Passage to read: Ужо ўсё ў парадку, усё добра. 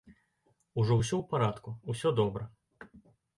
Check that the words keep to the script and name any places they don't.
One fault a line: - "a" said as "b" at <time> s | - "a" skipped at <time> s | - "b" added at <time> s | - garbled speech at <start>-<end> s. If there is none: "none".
none